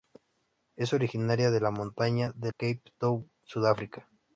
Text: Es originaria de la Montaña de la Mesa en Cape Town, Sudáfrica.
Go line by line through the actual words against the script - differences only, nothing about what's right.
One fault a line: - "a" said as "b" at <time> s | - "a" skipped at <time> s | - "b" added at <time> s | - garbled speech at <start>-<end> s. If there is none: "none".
- "la Mesa en" skipped at 2.5 s